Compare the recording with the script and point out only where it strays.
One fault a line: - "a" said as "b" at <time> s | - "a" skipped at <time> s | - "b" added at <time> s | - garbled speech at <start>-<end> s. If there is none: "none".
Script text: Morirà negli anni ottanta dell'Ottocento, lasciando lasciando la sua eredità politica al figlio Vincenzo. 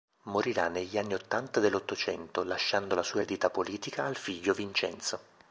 - "lasciando" skipped at 3.0 s